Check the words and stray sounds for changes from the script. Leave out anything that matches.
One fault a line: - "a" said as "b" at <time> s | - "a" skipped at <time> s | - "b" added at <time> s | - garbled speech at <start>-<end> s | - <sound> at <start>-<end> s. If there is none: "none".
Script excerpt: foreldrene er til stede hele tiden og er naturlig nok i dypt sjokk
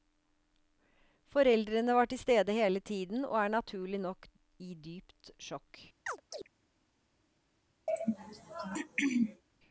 - "er" said as "var" at 1.9 s
- chirp at 6.1-6.5 s
- throat clearing at 7.9-9.4 s